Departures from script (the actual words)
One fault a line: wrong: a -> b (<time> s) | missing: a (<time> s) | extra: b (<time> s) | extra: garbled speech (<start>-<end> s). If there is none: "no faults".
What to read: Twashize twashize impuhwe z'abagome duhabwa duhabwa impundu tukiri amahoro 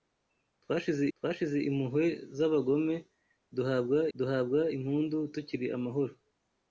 no faults